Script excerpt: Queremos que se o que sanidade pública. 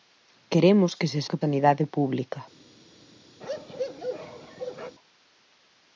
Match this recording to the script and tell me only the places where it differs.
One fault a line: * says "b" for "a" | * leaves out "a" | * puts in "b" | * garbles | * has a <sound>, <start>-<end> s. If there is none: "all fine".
* has a bark, 3.4-5.0 s